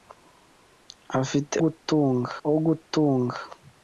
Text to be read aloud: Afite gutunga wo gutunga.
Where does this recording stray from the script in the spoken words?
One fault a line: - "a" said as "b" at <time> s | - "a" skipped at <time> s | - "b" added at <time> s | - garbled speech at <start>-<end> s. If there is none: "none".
none